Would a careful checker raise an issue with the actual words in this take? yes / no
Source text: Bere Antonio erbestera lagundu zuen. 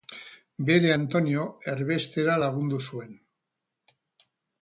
no